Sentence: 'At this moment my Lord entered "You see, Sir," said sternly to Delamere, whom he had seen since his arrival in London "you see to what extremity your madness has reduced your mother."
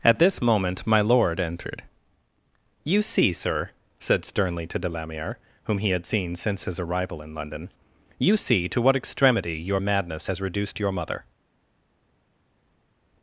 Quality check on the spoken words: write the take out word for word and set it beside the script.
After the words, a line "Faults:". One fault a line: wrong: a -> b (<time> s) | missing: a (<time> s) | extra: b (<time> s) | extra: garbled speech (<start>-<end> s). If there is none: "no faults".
'At this moment my Lord entered "You see, Sir," said sternly to Delamere, whom he had seen since his arrival in London "you see to what extremity your madness has reduced your mother."
Faults:
no faults